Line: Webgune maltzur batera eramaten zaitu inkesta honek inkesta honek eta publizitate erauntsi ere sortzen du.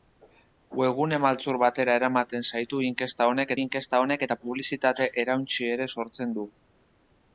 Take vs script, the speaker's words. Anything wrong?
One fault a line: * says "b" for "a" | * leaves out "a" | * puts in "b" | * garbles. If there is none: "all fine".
all fine